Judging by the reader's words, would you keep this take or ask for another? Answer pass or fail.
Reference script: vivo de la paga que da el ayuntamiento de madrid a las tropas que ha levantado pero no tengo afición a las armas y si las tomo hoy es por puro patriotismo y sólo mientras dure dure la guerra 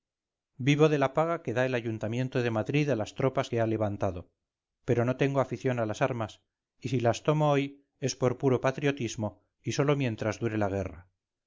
fail